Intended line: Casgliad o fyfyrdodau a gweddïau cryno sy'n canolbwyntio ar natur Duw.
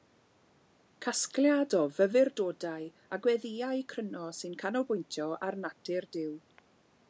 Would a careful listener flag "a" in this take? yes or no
no